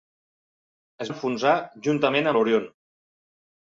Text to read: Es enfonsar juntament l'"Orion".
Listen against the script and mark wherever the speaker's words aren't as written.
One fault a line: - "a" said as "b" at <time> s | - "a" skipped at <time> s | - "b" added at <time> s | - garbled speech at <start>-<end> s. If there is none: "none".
none